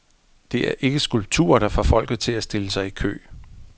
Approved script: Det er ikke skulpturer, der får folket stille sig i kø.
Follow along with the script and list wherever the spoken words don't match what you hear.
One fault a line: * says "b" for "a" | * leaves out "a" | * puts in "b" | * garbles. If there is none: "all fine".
* puts in "til at"